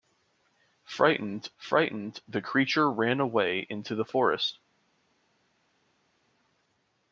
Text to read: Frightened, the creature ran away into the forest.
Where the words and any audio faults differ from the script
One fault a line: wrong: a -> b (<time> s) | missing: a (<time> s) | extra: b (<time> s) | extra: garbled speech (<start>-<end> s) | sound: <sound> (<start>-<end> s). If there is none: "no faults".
extra: frightened (1.6 s)